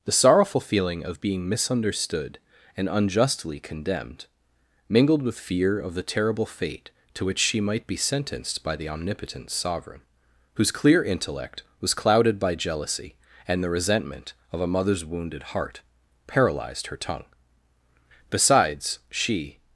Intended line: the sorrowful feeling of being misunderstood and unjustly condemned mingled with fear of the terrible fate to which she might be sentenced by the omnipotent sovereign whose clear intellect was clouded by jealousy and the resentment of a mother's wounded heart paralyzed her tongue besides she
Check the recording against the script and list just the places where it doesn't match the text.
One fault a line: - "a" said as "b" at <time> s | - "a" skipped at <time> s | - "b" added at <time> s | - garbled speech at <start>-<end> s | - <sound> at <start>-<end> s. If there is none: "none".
none